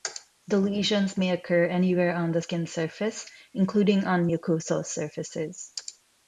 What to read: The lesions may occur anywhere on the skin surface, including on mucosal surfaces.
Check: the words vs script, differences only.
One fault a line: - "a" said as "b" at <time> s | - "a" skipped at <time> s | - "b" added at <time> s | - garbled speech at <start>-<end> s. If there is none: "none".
none